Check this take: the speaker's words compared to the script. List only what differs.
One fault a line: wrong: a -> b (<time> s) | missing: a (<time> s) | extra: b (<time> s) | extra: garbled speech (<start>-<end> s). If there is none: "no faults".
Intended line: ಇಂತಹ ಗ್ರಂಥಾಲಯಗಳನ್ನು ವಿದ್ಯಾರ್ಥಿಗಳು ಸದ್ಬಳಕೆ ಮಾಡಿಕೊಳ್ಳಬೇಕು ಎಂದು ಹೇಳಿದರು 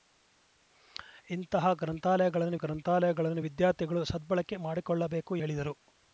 extra: ಗ್ರಂಥಾಲಯಗಳನ್ನು (2.5 s)
missing: ಎಂದು (5.3 s)